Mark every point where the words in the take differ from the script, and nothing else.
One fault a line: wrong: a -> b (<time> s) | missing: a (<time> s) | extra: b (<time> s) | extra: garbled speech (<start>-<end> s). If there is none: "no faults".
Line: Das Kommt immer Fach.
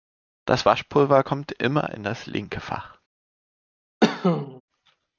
extra: Waschpulver (0.6 s)
extra: in das linke (1.9 s)